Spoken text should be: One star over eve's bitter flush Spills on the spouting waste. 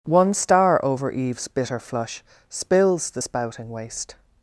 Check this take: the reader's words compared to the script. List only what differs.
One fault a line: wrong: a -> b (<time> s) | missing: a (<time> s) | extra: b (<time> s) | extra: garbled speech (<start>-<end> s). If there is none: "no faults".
missing: on (3.1 s)